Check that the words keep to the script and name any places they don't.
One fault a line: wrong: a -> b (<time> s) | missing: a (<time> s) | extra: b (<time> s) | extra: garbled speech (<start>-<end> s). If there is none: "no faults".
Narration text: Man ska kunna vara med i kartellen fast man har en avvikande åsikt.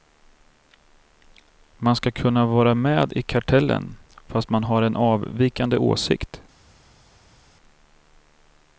no faults